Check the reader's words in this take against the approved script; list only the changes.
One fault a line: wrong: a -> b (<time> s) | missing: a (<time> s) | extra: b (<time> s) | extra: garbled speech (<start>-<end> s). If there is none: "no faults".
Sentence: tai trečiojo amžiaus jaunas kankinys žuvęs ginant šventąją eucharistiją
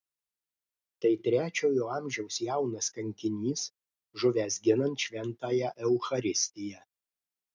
no faults